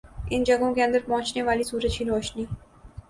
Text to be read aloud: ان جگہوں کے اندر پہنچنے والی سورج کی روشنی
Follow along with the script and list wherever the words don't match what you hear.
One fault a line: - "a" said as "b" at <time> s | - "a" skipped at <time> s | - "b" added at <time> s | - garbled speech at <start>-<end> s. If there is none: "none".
none